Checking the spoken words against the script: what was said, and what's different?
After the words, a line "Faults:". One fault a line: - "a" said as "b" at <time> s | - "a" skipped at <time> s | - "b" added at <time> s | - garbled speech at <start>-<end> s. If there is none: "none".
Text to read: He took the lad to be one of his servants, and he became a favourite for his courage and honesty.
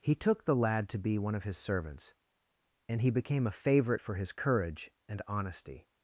He took the lad to be one of his servants, and he became a favourite for his courage and honesty.
Faults:
none